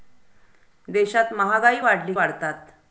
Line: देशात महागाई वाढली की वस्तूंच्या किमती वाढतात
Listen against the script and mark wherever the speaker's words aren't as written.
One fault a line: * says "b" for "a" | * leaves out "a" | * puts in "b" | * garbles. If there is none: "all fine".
* leaves out "की वस्तूंच्या किमती"